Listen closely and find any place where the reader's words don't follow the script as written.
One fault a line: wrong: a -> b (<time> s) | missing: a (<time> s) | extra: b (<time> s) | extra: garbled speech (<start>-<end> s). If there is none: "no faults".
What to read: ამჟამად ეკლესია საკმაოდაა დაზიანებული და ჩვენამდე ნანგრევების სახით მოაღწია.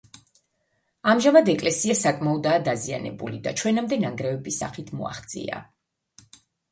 no faults